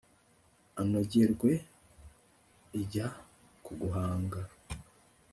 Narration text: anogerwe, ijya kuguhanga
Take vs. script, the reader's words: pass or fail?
pass